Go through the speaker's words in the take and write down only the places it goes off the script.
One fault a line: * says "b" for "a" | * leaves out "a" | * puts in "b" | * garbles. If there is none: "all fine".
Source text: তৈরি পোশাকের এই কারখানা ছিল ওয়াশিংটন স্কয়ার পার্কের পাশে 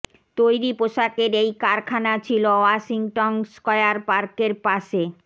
all fine